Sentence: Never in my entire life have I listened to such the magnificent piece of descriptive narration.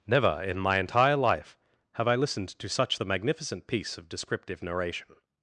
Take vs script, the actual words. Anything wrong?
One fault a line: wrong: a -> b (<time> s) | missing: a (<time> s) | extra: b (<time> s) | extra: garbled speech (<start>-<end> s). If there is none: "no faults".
no faults